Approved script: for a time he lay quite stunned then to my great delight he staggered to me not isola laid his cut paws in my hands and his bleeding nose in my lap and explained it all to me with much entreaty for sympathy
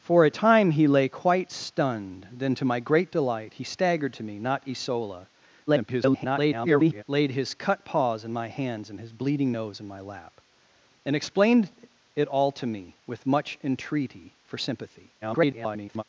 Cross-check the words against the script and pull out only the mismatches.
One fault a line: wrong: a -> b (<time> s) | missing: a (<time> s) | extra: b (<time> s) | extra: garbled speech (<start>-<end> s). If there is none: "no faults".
extra: garbled speech (5.7-7.0 s)
extra: garbled speech (15.2-16.0 s)